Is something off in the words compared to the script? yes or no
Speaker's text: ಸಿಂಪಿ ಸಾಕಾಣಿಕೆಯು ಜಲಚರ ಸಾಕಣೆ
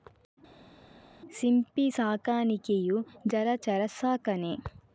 no